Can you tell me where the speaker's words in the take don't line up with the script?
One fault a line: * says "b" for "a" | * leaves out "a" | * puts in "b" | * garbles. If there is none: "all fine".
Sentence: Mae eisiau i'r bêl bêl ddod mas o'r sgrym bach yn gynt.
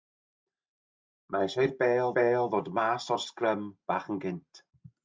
all fine